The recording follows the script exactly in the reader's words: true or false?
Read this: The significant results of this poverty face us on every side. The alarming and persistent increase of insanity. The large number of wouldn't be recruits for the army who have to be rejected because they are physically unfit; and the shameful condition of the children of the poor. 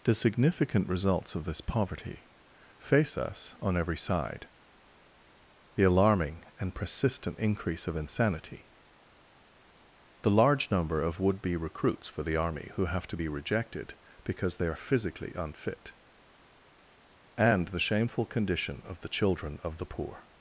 false